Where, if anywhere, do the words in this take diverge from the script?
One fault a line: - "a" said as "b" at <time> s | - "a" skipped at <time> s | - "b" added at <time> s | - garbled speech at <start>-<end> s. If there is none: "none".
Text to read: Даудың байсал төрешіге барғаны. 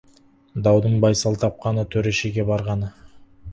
- "тапқаны" added at 1.4 s